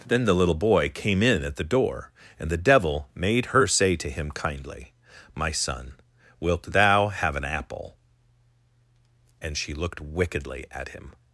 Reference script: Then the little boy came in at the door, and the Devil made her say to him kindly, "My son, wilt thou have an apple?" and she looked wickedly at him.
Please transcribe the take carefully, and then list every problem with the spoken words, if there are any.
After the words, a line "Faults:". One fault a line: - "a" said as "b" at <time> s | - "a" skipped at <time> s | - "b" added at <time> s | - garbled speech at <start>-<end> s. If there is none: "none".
Then the little boy came in at the door, and the Devil made her say to him kindly, "My son, wilt thou have an apple?" and she looked wickedly at him.
Faults:
none